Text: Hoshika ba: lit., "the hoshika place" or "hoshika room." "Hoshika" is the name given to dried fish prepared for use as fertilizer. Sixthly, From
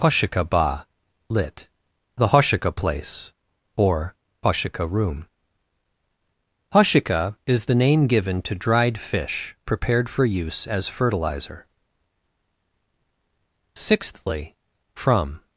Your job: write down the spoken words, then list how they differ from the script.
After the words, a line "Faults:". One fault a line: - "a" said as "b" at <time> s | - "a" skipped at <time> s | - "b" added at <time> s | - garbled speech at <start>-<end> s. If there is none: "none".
Hoshika ba: lit., "the hoshika place" or "hoshika room." "Hoshika" is the name given to dried fish prepared for use as fertilizer. Sixthly, From
Faults:
none